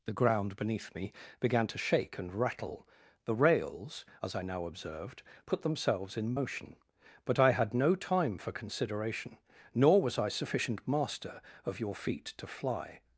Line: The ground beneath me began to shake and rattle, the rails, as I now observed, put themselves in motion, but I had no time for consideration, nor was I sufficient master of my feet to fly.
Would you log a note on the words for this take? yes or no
yes